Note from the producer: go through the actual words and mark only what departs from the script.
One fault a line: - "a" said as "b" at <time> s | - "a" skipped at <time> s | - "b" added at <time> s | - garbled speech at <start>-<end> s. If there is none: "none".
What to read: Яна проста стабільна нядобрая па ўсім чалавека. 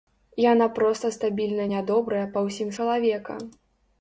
none